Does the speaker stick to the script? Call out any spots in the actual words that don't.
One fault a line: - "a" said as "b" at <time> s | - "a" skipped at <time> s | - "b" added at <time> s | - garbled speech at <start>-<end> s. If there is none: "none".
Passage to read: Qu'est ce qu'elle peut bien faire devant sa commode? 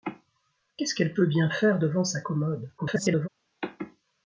- garbled speech at 2.8-3.3 s